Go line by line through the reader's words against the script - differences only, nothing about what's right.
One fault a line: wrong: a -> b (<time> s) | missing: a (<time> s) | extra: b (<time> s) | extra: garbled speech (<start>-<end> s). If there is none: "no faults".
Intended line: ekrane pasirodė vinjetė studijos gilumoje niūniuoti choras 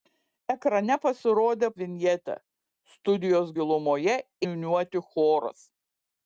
no faults